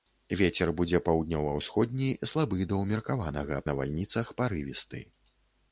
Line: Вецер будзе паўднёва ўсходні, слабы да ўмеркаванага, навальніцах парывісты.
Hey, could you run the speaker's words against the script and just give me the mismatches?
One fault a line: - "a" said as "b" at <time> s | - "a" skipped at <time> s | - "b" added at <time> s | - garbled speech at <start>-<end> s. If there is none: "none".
none